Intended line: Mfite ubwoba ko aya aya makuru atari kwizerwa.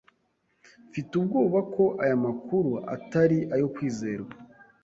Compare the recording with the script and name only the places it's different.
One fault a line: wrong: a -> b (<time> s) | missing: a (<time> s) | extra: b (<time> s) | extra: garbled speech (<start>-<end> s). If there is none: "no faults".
missing: aya (2.2 s)
extra: ayo (3.5 s)